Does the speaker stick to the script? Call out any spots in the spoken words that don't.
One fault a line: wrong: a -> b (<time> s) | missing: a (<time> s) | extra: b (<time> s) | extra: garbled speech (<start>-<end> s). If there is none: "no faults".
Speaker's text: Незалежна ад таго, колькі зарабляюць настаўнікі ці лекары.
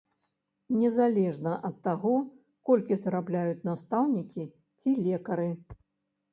no faults